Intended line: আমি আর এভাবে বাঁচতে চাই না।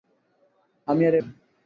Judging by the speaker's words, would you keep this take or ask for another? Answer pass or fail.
fail